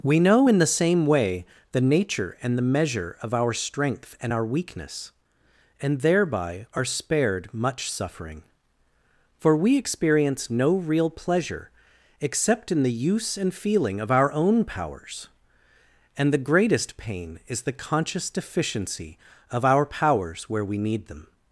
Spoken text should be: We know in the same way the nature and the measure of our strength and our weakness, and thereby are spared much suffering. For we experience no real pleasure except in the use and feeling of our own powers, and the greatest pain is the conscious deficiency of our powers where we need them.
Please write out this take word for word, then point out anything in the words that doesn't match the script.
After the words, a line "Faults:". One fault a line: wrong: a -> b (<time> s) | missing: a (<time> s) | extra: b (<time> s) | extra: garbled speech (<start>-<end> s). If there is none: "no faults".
We know in the same way the nature and the measure of our strength and our weakness, and thereby are spared much suffering. For we experience no real pleasure except in the use and feeling of our own powers, and the greatest pain is the conscious deficiency of our powers where we need them.
Faults:
no faults